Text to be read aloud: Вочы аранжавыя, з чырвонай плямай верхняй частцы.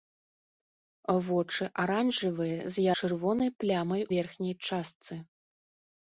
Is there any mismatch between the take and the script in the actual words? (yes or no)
no